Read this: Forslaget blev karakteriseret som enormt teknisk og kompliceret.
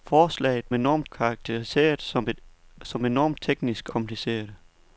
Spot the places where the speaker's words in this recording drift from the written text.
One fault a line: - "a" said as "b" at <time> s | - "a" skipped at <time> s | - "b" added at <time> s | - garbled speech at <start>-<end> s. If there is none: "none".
- "blev" said as "enormt" at 0.7 s
- "og" skipped at 3.9 s